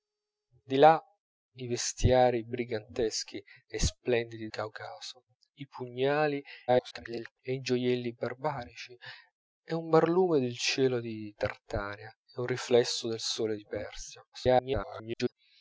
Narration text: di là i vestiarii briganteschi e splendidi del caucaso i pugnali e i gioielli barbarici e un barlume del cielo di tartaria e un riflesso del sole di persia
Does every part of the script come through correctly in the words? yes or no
no